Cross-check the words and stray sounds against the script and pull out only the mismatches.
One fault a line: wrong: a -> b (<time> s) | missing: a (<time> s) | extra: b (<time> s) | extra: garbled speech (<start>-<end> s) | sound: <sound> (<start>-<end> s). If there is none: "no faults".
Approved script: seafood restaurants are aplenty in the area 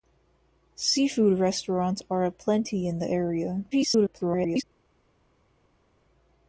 extra: garbled speech (3.7-4.6 s)